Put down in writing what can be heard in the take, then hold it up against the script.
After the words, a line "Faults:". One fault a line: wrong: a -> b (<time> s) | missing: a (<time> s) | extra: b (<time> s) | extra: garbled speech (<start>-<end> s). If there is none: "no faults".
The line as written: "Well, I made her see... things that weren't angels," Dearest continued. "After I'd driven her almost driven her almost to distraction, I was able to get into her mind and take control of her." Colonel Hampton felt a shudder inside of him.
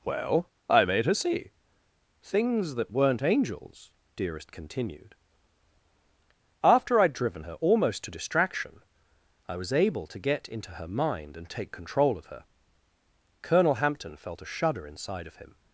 "Well, I made her see... things that weren't angels," Dearest continued. "After I'd driven her almost to distraction, I was able to get into her mind and take control of her." Colonel Hampton felt a shudder inside of him.
Faults:
missing: driven her almost (8.0 s)